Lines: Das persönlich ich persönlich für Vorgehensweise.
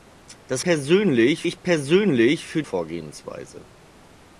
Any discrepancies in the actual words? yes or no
no